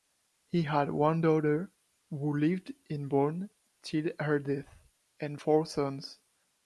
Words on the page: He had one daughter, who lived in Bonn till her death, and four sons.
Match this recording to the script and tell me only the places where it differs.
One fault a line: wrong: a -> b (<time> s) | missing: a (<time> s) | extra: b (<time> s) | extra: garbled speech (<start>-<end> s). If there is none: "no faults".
no faults